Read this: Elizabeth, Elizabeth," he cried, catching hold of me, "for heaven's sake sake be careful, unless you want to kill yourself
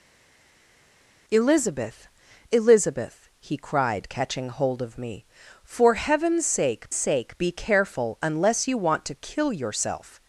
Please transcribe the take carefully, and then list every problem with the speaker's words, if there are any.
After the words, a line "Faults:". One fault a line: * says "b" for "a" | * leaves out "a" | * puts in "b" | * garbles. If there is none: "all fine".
Elizabeth, Elizabeth," he cried, catching hold of me, "for heaven's sake sake be careful, unless you want to kill yourself
Faults:
all fine